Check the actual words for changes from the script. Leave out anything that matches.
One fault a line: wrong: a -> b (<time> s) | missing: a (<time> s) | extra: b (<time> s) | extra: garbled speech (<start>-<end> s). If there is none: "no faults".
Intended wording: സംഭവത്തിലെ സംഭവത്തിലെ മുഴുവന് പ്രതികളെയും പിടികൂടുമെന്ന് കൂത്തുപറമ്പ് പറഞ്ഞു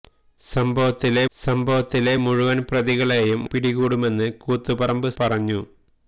no faults